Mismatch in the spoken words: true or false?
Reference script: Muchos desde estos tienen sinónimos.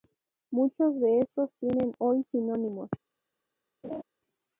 true